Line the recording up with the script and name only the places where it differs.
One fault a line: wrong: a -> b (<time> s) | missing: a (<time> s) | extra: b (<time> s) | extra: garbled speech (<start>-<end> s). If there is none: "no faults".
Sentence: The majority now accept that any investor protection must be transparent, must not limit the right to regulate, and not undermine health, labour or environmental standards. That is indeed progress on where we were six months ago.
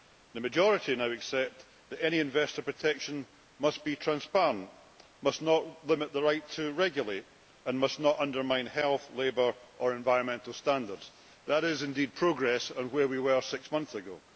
extra: must (7.8 s)